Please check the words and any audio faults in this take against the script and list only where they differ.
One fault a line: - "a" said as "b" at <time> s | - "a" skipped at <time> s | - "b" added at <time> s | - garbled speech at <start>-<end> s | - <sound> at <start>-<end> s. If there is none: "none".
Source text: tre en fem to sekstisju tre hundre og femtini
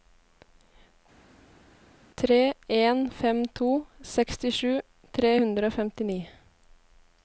none